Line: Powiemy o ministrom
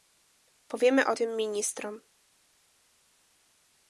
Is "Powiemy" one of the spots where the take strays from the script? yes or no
no